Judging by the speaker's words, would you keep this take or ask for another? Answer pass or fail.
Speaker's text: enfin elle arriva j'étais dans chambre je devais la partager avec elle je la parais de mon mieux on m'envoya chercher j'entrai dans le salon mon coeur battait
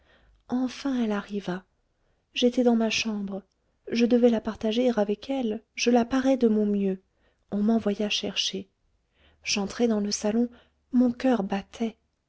fail